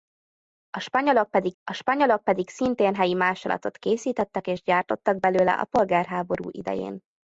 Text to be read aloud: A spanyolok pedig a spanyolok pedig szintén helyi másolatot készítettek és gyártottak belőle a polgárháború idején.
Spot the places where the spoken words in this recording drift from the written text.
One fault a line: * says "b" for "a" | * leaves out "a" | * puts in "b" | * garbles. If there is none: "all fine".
all fine